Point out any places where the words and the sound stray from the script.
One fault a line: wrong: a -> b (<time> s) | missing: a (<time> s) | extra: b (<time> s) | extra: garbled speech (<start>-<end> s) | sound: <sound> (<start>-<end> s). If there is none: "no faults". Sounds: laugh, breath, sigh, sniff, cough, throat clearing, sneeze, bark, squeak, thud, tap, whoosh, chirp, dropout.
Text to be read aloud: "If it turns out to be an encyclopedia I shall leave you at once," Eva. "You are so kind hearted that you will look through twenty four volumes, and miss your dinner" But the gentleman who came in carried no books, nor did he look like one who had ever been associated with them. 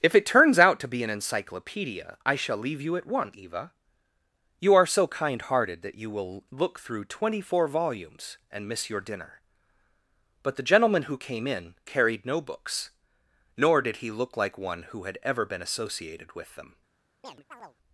sound: chirp (17.2-17.8 s)